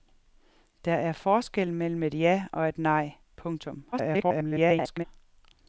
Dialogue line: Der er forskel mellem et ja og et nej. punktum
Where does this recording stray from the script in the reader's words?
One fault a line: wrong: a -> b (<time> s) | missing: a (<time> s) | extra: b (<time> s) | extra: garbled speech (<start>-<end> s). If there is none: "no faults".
extra: garbled speech (3.9-5.0 s)